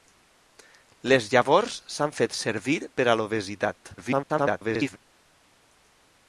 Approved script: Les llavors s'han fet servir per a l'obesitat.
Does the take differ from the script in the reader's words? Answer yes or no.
yes